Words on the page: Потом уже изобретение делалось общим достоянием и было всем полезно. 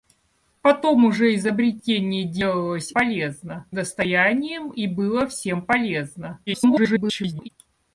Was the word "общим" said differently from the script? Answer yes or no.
yes